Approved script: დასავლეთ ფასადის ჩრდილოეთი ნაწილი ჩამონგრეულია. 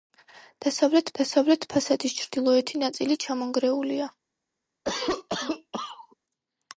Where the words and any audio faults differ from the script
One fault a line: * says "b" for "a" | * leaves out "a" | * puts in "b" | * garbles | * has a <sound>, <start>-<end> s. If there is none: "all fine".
* puts in "დასავლეთ"
* has a cough, 4.8-6.2 s